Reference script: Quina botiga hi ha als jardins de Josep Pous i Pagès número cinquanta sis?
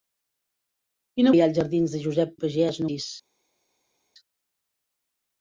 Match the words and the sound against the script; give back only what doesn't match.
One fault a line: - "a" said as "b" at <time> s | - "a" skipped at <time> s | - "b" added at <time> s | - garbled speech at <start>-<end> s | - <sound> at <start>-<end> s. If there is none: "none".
- "botiga" skipped at 1.3 s
- "Pous" skipped at 2.3 s
- "número cinquanta" skipped at 2.8 s